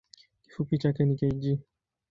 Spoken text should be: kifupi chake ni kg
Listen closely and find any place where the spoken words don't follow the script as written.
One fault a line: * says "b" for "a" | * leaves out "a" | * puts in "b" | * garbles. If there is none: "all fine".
all fine